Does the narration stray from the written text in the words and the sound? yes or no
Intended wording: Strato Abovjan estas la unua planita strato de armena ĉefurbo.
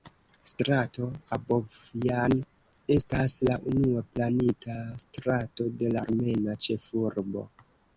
no